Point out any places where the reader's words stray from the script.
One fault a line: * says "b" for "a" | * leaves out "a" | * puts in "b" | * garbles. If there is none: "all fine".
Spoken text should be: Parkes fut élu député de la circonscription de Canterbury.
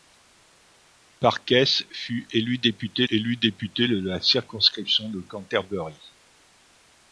* puts in "élu député"